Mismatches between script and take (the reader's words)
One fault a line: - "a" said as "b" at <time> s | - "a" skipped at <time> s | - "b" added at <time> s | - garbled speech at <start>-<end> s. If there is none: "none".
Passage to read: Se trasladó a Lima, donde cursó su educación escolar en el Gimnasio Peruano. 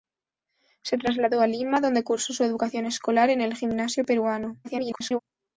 - garbled speech at 4.6-5.2 s